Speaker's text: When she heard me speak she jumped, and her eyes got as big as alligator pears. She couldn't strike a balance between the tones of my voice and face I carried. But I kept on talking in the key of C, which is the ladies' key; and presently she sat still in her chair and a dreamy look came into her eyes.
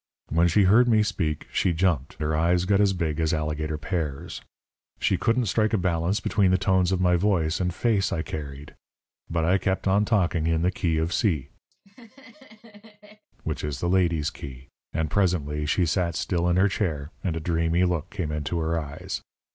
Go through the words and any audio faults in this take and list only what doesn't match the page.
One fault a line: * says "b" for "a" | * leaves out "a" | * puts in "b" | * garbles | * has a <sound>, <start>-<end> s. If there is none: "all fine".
* leaves out "and"
* has a laugh, 11.7-13.3 s